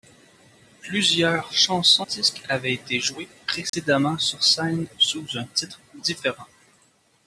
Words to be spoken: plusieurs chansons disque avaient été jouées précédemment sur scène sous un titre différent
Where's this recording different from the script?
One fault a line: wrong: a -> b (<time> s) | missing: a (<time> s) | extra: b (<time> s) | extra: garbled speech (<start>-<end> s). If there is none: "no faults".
no faults